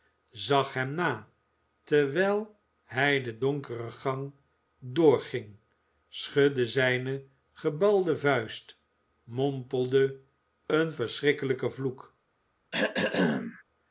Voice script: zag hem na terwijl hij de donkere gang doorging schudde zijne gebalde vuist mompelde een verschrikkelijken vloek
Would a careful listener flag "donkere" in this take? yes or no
no